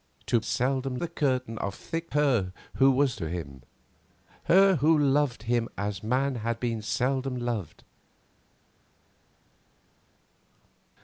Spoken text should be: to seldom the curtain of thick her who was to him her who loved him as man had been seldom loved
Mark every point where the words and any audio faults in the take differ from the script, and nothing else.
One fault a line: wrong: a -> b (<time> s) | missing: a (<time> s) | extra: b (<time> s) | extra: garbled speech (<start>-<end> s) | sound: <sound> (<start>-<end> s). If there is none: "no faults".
no faults